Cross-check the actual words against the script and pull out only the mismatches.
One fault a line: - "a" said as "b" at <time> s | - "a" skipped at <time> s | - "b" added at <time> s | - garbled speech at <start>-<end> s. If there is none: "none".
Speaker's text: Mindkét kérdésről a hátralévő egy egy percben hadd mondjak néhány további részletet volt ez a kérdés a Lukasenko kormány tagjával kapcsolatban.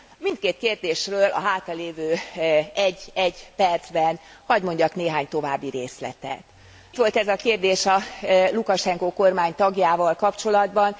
none